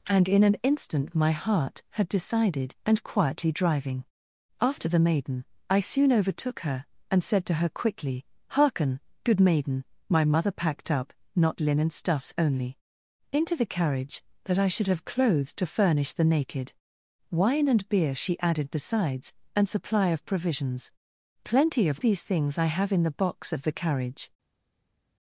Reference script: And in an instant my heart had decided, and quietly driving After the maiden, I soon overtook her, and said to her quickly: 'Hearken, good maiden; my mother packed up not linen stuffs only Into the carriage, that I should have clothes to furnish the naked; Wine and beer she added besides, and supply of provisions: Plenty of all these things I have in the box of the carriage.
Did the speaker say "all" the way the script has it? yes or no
no